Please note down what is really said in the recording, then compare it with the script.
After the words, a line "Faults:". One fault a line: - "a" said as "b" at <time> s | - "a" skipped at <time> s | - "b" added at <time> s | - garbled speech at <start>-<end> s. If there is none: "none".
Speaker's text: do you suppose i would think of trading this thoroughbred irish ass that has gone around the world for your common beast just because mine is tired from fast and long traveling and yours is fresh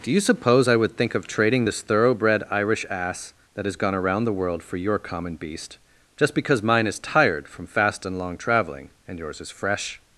do you suppose i would think of trading this thoroughbred irish ass that has gone around the world for your common beast just because mine is tired from fast and long traveling and yours is fresh
Faults:
none